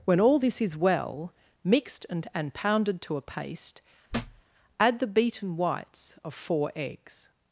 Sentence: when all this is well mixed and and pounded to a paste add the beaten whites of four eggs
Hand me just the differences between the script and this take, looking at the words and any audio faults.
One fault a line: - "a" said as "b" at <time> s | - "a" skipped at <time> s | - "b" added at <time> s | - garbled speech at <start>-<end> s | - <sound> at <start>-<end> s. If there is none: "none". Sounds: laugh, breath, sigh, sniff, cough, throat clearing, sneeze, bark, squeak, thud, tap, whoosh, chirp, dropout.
- thud at 4.1-4.4 s